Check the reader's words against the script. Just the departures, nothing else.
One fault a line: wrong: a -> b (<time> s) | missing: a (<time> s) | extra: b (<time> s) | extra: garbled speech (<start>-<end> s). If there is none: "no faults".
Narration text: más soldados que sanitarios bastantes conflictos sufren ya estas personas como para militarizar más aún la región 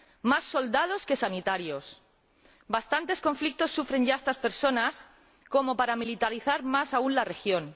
no faults